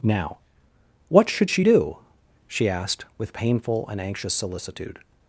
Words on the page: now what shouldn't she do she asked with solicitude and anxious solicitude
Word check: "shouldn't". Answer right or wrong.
wrong